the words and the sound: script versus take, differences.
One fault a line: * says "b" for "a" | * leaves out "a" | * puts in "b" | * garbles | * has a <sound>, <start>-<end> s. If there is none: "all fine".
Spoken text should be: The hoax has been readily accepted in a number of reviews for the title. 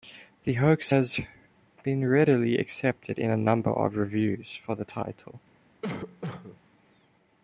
* has a cough, 5.8-6.6 s